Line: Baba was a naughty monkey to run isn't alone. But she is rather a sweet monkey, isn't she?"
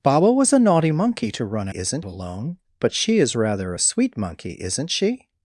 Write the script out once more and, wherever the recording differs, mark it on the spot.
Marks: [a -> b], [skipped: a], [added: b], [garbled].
Baba was a naughty monkey to run isn't alone. But she is rather a sweet monkey, isn't she?"